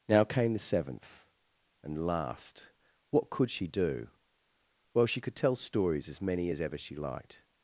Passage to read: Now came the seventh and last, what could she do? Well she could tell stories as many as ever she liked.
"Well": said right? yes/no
yes